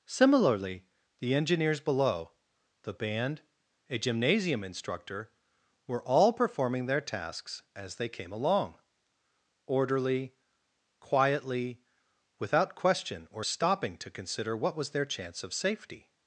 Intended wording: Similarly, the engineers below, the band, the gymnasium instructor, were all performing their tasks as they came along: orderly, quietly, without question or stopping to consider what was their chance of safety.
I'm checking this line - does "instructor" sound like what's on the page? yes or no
yes